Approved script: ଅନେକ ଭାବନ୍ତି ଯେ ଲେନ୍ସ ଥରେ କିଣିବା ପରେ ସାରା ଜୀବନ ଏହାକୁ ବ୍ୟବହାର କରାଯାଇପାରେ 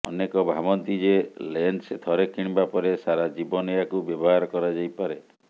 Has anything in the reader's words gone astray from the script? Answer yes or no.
no